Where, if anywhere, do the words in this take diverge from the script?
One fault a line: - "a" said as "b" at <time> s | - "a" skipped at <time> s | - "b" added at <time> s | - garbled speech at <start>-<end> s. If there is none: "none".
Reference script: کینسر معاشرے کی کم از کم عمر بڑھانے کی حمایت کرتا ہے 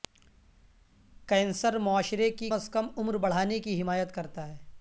- "کم" skipped at 2.5 s